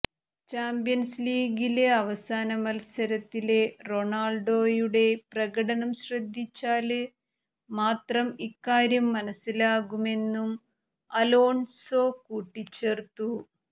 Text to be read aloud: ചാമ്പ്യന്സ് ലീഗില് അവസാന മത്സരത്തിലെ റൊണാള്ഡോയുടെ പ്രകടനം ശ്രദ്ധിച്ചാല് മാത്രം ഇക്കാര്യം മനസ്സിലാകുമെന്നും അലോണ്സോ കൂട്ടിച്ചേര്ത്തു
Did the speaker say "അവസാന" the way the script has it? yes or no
yes